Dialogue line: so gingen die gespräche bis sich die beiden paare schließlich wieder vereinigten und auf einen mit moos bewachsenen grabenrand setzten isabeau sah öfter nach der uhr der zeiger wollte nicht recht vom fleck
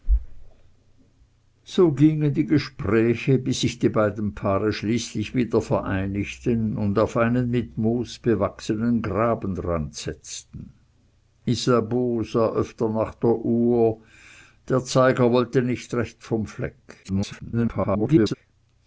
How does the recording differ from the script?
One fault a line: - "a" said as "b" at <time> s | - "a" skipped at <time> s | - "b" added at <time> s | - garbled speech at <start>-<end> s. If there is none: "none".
- garbled speech at 17.0-18.3 s